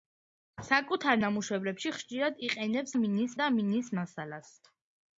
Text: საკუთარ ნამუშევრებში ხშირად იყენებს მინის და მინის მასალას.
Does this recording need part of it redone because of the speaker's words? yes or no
no